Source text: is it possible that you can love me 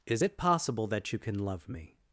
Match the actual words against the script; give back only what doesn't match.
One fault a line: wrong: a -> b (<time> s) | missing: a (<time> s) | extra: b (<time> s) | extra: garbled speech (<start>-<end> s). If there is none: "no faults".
no faults